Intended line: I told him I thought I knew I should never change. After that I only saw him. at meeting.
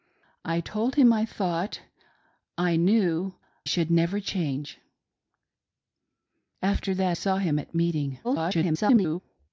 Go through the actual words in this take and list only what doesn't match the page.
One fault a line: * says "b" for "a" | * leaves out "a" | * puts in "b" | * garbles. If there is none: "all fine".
* leaves out "I"
* leaves out "I only"
* garbles